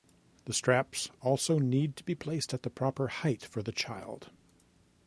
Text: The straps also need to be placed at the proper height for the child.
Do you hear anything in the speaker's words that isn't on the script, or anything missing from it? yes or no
no